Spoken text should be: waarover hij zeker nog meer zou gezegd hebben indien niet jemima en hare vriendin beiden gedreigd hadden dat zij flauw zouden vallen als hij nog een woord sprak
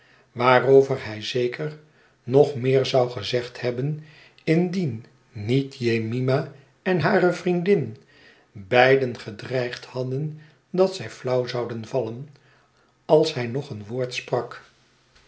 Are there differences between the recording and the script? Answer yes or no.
no